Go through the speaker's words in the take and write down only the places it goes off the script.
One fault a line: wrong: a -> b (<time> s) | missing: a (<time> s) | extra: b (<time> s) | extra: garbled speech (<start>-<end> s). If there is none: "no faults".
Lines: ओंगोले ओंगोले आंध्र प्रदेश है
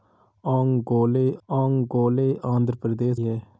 no faults